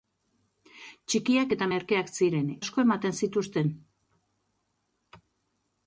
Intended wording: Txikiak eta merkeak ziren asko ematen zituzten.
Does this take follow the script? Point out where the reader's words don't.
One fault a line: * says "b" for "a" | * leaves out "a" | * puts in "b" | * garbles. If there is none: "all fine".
all fine